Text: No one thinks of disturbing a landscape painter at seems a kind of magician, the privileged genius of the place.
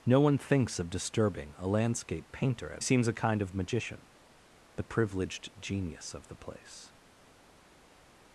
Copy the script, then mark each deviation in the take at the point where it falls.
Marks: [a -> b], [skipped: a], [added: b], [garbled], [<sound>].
No one thinks of disturbing a landscape painter at seems a kind of magician, the privileged genius of the place.